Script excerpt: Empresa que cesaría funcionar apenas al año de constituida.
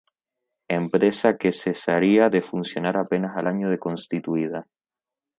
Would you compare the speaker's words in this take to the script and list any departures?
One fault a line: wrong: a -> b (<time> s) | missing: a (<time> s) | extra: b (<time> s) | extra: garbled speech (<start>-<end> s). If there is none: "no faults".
extra: de (2.3 s)